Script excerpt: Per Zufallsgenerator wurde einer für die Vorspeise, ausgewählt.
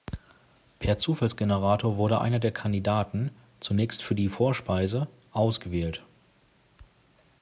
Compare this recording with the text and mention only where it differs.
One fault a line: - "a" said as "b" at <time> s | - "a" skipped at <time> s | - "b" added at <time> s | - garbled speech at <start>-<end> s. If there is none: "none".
- "der Kandidaten zunächst" added at 2.4 s